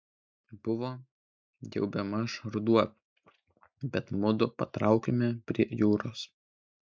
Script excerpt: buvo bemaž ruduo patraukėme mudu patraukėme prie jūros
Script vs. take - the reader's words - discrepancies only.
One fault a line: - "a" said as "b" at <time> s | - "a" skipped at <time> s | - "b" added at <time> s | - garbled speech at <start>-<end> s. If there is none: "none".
- "jau" added at 1.7 s
- "patraukėme" said as "bet" at 4.0 s